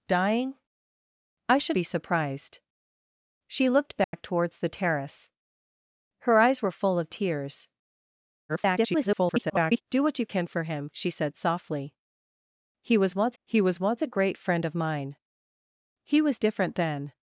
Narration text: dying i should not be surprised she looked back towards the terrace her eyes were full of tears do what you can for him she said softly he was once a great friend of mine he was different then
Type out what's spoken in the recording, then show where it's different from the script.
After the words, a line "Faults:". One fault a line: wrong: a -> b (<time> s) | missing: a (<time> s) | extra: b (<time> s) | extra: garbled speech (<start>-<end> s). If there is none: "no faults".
dying i should be surprised she looked back towards the terrace her eyes were full of tears [garbled] do what you can for him she said softly he was once he was once a great friend of mine he was different then
Faults:
missing: not (1.8 s)
extra: garbled speech (8.5-9.8 s)
extra: he was once (13.4 s)